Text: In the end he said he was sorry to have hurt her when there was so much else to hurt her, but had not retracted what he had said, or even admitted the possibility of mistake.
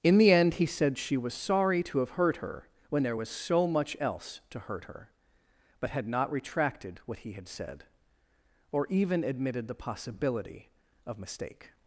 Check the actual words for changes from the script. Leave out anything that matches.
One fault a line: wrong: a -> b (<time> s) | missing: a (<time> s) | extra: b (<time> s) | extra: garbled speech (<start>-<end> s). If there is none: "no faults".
wrong: he -> she (1.0 s)